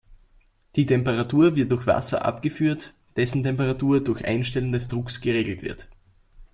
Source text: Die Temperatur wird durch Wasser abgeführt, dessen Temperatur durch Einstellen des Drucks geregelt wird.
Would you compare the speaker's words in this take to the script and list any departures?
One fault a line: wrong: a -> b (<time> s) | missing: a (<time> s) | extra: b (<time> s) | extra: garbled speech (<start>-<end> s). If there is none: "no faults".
no faults